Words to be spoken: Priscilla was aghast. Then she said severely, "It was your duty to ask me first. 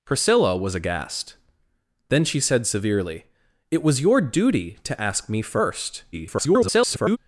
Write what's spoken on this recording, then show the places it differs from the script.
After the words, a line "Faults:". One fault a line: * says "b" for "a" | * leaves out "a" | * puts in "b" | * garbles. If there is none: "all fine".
Priscilla was aghast. Then she said severely, "It was your duty to ask me first. [garbled]
Faults:
* garbles